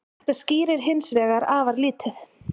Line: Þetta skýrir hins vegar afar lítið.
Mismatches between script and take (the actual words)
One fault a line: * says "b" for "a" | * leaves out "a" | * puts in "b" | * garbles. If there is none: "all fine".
all fine